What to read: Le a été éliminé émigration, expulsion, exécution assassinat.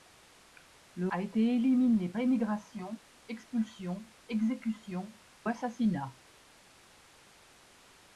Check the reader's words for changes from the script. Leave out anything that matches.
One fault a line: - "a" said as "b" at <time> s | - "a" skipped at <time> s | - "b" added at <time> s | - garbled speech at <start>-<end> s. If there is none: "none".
none